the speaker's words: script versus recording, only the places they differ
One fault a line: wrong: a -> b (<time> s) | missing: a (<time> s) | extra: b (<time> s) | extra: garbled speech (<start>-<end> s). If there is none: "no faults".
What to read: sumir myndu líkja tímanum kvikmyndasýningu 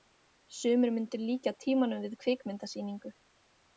extra: við (2.1 s)